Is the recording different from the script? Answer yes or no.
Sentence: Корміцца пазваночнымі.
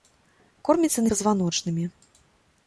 no